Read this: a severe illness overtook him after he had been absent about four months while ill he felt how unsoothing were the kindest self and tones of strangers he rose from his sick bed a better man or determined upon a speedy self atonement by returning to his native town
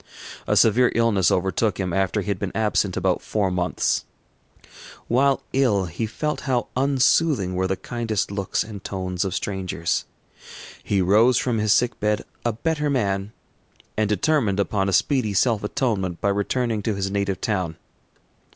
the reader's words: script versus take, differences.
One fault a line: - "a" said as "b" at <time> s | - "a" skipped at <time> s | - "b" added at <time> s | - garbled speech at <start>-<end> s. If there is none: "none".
- "self" said as "looks" at 8.3 s
- "or" said as "and" at 14.0 s